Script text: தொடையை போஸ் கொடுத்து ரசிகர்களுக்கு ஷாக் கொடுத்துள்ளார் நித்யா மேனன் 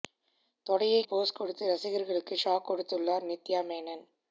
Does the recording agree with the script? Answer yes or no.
yes